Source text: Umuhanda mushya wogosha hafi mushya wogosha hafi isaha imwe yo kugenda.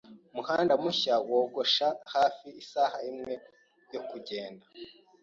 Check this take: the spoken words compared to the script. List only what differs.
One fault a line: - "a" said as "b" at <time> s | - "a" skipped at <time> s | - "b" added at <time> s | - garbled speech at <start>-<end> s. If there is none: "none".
- "mushya wogosha hafi" skipped at 2.5 s